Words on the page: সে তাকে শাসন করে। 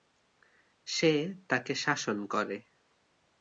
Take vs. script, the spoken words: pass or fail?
pass